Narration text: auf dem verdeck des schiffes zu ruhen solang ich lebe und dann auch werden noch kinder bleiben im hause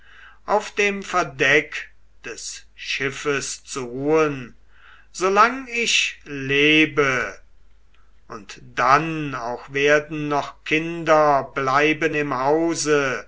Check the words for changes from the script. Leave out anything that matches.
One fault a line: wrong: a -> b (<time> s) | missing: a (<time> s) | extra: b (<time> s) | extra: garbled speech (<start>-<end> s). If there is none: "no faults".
no faults